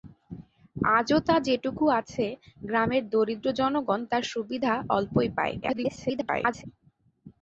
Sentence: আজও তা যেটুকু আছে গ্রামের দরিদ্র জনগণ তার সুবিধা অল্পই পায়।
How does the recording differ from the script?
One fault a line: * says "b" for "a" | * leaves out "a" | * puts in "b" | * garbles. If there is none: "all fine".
* garbles